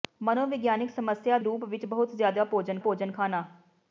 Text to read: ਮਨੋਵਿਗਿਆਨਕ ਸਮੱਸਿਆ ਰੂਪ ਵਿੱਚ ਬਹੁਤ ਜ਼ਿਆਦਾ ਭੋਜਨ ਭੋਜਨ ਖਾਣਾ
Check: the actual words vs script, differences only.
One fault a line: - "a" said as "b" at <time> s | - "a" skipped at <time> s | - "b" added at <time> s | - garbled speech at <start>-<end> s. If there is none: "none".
none